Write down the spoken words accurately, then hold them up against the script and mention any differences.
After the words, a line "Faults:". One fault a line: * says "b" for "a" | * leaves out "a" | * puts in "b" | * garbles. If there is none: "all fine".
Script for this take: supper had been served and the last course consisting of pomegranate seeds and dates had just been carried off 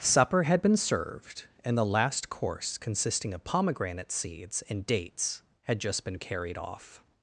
supper had been served and the last course consisting of pomegranate seeds and dates had just been carried off
Faults:
all fine